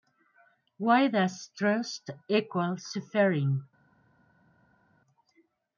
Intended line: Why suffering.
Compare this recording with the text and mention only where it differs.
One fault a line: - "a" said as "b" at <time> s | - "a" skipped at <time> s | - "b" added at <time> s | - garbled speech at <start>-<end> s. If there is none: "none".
- "does trust equal" added at 1.1 s